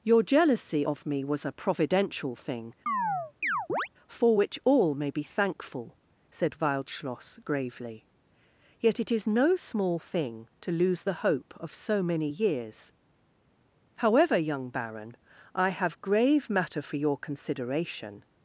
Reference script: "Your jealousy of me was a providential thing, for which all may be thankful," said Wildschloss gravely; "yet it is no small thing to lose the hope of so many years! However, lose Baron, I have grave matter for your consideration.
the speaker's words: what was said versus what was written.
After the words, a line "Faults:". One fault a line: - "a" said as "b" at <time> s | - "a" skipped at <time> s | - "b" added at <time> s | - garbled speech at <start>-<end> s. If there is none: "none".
"Your jealousy of me was a providential thing, for which all may be thankful," said Wildschloss gravely; "yet it is no small thing to lose the hope of so many years! However, young Baron, I have grave matter for your consideration.
Faults:
- "lose" said as "young" at 14.4 s